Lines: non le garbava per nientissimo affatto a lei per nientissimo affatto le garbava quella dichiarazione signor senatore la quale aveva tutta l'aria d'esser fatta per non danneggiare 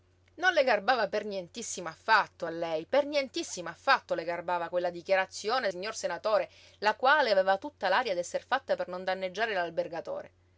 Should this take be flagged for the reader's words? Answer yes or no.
no